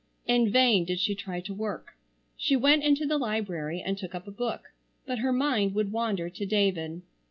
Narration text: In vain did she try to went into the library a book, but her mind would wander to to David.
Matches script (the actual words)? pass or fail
fail